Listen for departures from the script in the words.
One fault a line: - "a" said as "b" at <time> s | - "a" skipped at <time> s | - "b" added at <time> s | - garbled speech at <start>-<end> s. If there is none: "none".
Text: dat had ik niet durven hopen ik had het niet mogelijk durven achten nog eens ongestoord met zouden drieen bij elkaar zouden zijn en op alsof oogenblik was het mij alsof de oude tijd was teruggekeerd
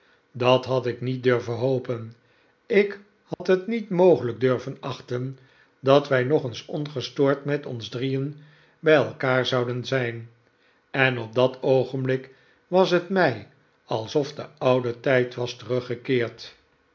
- "dat wij" added at 5.8 s
- "zouden" said as "ons" at 7.7 s
- "alsof" said as "dat" at 11.4 s